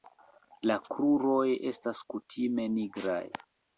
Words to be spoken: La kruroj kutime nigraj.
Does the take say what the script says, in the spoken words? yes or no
no